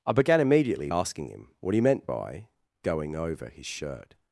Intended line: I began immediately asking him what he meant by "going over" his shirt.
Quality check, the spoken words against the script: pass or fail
pass